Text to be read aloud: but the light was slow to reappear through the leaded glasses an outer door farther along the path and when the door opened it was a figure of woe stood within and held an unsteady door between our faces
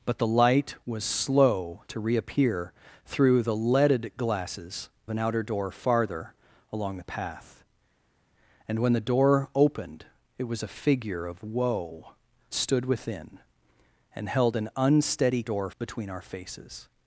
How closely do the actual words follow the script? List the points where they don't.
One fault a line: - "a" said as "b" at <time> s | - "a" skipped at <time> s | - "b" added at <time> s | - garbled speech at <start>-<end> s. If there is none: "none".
none